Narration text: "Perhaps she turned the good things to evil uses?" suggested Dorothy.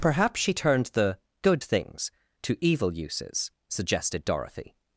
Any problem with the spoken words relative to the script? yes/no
no